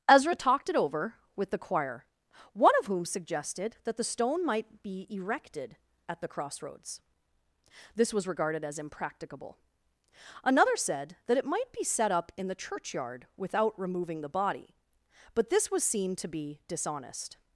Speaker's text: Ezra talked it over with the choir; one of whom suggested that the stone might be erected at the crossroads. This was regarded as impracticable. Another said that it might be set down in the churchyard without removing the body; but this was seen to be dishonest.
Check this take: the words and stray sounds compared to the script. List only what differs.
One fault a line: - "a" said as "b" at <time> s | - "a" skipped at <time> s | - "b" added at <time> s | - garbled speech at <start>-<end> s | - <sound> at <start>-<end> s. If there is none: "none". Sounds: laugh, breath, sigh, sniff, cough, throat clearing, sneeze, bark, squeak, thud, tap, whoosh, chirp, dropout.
- "down" said as "up" at 12.1 s